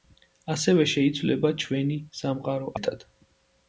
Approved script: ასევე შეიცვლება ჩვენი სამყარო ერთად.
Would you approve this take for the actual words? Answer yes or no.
yes